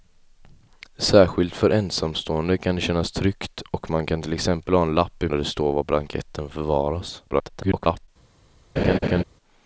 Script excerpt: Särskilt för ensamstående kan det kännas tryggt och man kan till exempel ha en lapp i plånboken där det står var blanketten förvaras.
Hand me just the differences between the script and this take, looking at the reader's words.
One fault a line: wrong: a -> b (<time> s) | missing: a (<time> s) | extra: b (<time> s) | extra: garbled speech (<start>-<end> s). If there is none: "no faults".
missing: plånboken (5.3 s)
extra: garbled speech (7.3-8.1 s)